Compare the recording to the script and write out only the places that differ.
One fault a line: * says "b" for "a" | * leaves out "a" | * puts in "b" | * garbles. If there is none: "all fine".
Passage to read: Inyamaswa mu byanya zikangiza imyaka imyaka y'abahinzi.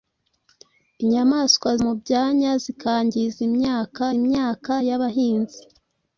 all fine